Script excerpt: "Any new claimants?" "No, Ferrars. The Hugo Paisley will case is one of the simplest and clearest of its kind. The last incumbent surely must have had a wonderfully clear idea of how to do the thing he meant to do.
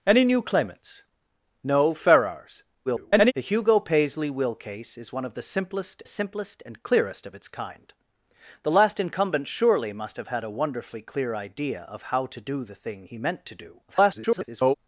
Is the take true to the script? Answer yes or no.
no